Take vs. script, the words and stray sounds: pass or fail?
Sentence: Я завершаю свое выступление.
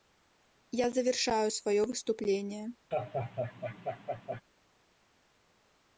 fail